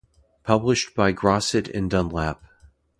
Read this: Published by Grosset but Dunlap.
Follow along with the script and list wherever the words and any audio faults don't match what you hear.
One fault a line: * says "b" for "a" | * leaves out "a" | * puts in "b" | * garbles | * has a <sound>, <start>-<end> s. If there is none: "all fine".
* says "and" for "but"